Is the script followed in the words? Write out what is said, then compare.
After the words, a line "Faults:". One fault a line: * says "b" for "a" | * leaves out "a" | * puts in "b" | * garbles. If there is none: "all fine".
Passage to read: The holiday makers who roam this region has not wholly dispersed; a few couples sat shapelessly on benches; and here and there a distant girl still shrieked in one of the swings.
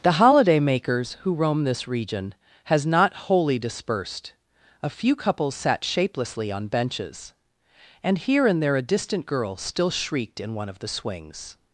The holiday makers who roam this region has not wholly dispersed; a few couples sat shapelessly on benches; and here and there a distant girl still shrieked in one of the swings.
Faults:
all fine